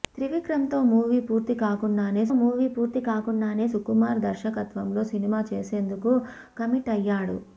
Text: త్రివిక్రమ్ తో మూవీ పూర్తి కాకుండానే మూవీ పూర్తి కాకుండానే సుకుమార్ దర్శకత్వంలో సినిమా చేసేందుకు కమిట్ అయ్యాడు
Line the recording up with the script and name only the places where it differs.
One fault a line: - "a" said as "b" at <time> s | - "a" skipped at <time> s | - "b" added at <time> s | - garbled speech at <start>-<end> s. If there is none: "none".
none